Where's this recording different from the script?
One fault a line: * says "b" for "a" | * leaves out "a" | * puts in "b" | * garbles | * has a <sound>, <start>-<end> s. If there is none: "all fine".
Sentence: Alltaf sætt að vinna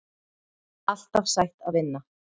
all fine